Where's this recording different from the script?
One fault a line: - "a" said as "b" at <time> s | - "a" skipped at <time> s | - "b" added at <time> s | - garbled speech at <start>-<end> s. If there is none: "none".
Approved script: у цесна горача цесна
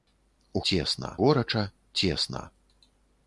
none